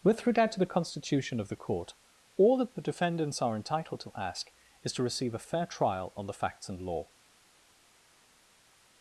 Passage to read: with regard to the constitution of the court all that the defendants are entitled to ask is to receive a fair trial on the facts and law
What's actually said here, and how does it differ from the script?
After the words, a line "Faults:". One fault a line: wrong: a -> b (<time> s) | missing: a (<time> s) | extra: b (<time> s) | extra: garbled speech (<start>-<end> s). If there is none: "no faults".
with regard to the constitution of the court all that the defendants are entitled to ask is to receive a fair trial on the facts and law
Faults:
no faults